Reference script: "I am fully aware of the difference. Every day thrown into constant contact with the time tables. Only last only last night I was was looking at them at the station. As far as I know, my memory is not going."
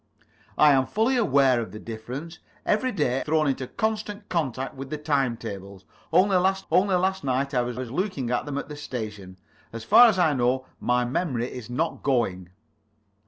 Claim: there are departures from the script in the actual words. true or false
false